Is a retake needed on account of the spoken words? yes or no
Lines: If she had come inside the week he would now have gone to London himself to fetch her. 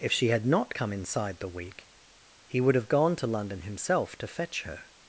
yes